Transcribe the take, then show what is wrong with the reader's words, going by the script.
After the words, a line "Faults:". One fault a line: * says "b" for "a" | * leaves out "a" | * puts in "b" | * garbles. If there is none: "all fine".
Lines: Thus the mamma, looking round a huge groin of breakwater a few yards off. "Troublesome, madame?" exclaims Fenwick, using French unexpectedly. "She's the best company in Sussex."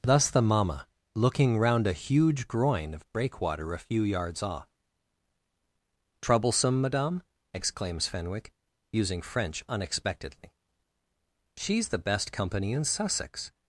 Thus the mamma, looking round a huge groin of breakwater a few yards off. "Troublesome, madame?" exclaims Fenwick, using French unexpectedly. "She's the best company in Sussex."
Faults:
all fine